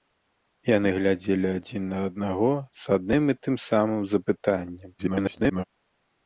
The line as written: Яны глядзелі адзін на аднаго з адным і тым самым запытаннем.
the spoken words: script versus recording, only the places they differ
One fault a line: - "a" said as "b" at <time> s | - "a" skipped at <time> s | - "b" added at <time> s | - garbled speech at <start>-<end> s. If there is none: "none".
- garbled speech at 5.0-5.6 s